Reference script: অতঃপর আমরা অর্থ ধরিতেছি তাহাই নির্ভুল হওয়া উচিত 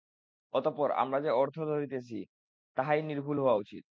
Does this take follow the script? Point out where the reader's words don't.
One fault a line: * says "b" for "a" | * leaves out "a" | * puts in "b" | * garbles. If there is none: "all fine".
* puts in "যে"